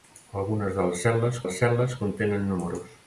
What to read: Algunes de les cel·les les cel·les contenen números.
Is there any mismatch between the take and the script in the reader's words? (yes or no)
no